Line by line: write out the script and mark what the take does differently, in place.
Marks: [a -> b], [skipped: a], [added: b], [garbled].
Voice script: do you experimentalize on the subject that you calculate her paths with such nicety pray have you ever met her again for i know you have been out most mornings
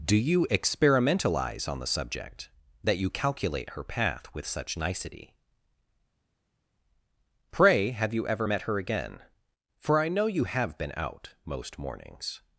do you experimentalize on the subject that you calculate her [paths -> path] with such nicety pray have you ever met her again for i know you have been out most mornings